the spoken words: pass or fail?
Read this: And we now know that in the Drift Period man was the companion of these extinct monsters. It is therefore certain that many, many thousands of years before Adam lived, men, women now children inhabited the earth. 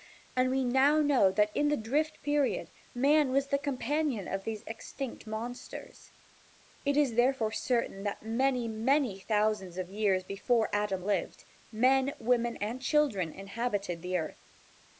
fail